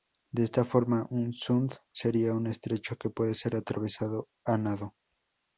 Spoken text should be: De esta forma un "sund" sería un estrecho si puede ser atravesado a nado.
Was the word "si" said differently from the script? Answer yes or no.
yes